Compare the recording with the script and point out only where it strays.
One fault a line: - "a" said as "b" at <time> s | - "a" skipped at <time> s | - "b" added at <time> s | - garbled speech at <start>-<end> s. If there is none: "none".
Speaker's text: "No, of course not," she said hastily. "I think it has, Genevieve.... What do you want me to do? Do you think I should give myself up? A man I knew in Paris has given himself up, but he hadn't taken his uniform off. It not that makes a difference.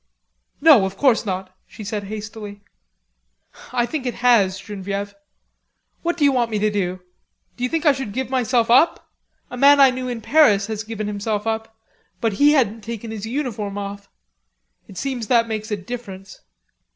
- "not" said as "seems" at 15.0 s